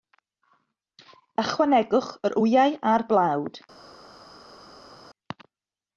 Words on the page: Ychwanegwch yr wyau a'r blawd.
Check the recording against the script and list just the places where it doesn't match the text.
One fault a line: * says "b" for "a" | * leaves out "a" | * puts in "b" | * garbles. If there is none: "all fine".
all fine